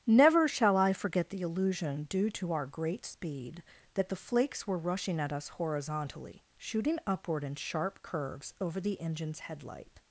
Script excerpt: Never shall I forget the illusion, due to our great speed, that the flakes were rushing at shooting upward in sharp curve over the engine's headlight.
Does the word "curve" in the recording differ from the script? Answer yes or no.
yes